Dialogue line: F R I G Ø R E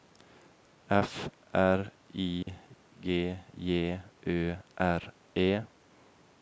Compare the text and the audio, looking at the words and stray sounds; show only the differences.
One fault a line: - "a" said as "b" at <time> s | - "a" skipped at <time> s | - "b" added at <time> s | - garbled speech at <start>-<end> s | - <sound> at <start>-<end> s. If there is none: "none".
- dropout at 2.4-2.5 s
- "J" added at 3.5 s